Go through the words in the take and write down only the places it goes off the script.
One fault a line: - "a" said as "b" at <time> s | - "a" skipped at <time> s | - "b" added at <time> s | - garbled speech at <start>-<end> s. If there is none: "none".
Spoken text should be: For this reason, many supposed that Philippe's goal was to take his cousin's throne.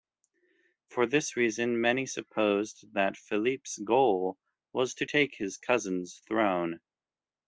none